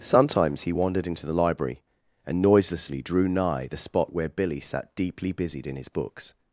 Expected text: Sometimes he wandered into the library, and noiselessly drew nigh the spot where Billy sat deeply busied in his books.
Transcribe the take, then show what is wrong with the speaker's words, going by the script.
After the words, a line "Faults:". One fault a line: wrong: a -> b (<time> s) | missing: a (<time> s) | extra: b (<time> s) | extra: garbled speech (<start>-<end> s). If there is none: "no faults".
Sometimes he wandered into the library, and noiselessly drew nigh the spot where Billy sat deeply busied in his books.
Faults:
no faults